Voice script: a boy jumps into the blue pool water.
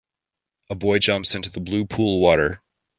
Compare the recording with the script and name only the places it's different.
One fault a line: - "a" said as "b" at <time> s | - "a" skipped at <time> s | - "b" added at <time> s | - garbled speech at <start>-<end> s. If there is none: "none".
none